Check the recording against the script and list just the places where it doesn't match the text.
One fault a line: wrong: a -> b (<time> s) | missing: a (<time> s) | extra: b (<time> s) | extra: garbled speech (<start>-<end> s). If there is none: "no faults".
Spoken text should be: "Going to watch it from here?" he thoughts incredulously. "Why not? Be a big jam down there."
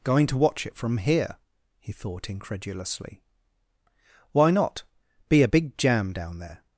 wrong: thoughts -> thought (1.9 s)